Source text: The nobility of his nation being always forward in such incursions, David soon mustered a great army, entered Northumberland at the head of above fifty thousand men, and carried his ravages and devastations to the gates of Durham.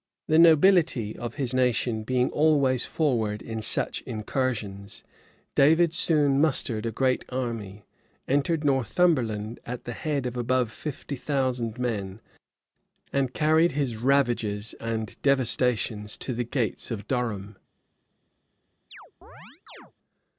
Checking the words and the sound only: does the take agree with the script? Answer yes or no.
no